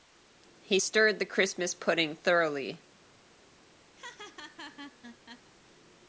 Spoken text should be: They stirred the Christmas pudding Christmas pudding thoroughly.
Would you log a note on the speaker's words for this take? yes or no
yes